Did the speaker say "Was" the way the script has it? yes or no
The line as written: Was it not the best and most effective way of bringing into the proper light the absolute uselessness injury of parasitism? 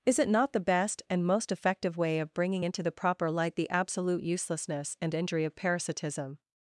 no